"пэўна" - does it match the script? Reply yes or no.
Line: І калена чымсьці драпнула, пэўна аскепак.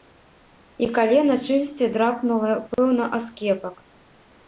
yes